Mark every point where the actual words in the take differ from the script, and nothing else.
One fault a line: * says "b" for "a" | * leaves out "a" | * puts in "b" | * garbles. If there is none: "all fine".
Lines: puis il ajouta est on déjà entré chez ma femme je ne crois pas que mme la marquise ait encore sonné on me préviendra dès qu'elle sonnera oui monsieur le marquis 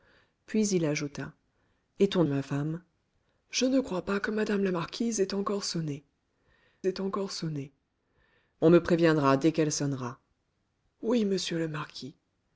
* leaves out "déjà entré chez"
* puts in "ait encore sonné"